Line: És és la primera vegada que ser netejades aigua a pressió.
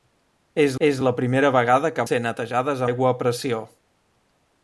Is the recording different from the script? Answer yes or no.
no